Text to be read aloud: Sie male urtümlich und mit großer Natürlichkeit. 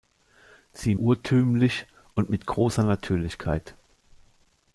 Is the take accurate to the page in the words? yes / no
no